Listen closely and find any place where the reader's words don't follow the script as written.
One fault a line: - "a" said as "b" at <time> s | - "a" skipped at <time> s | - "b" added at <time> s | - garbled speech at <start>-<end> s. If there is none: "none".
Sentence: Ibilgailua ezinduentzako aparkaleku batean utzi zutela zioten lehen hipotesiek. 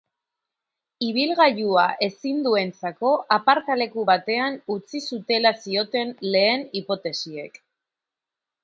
none